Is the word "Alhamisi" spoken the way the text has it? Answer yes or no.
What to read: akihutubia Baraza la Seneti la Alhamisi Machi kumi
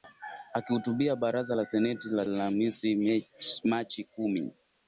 yes